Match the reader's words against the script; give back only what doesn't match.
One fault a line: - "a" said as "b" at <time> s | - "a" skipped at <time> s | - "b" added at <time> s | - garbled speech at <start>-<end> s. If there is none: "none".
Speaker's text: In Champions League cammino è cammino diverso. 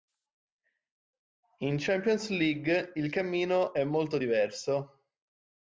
- "il" added at 3.0 s
- "cammino" said as "molto" at 3.8 s